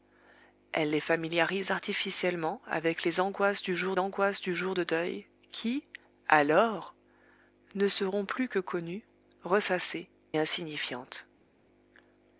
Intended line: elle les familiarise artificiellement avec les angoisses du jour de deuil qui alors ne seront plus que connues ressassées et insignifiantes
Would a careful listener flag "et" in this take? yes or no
yes